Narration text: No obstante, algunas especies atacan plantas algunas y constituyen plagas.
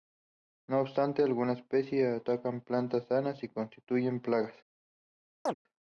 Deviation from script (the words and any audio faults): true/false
true